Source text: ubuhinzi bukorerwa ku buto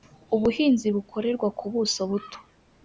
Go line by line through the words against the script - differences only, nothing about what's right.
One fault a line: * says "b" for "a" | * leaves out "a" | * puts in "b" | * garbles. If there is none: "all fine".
* puts in "buso"